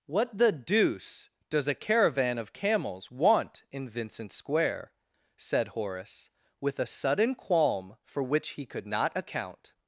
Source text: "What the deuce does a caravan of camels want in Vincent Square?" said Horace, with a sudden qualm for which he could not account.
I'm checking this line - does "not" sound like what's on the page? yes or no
yes